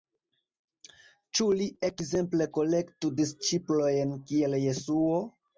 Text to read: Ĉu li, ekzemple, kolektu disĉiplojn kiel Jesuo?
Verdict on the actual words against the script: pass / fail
pass